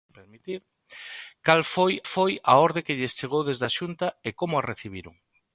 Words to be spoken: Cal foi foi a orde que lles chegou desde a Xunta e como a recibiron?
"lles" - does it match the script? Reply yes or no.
yes